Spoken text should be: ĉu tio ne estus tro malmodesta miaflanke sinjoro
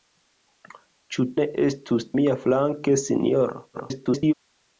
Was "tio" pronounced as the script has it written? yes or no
no